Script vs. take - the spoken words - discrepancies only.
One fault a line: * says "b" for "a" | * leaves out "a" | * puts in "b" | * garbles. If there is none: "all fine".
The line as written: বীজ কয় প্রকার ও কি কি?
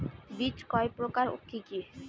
all fine